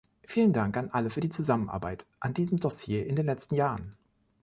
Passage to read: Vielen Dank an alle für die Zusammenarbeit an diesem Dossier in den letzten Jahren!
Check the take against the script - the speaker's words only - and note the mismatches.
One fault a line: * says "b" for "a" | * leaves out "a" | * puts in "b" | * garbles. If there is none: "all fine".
all fine